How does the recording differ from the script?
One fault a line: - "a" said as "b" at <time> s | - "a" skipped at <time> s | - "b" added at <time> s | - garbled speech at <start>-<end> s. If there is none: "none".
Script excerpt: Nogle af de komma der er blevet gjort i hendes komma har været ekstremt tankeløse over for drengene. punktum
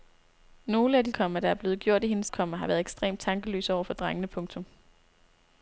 none